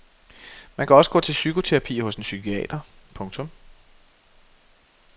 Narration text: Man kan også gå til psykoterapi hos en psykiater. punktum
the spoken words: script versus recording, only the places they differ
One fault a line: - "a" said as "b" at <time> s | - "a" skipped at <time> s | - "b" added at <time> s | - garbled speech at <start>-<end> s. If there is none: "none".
none